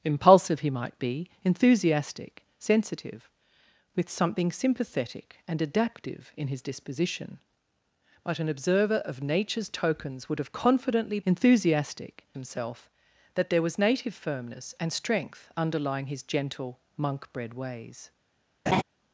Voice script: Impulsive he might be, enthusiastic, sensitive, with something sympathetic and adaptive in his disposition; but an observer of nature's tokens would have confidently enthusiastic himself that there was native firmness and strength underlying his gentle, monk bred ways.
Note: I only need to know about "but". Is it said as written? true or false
true